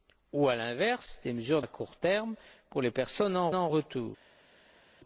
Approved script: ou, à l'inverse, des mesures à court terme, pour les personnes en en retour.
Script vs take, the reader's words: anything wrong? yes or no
no